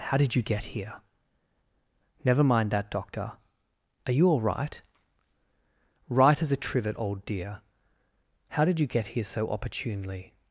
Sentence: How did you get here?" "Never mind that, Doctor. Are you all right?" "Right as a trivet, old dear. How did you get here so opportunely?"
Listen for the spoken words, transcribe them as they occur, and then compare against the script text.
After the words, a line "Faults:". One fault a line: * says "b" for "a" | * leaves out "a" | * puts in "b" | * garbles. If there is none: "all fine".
How did you get here?" "Never mind that, Doctor. Are you all right?" "Right as a trivet, old dear. How did you get here so opportunely?"
Faults:
all fine